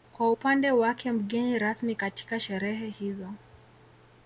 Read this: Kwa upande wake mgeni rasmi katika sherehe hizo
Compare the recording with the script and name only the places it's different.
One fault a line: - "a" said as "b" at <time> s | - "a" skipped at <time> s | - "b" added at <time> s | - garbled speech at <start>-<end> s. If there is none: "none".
none